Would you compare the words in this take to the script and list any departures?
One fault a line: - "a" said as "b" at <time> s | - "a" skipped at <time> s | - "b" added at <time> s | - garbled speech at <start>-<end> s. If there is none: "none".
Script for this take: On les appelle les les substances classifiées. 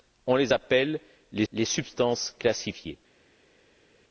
none